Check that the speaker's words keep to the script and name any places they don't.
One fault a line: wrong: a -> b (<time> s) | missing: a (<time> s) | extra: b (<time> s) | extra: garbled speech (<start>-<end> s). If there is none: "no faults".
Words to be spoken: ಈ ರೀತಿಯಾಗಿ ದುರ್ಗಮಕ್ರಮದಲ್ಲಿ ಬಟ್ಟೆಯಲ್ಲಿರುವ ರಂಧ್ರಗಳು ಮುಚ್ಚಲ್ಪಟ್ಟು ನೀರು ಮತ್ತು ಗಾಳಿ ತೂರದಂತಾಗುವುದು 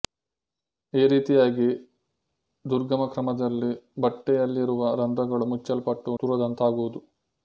missing: ನೀರು ಮತ್ತು ಗಾಳಿ (6.2 s)